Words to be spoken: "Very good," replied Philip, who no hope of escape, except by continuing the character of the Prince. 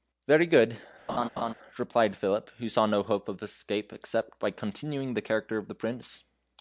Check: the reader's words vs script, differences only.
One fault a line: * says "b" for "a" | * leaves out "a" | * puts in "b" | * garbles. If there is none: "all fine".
* puts in "saw"